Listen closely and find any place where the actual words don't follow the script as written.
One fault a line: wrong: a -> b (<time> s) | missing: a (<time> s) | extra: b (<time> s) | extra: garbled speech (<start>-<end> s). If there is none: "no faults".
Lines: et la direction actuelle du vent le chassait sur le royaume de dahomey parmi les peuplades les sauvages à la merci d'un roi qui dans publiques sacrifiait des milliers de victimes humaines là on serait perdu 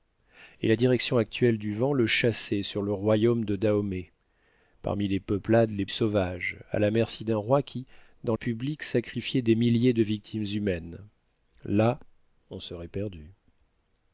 no faults